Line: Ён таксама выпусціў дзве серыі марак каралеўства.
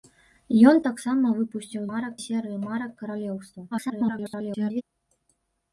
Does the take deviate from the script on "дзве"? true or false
true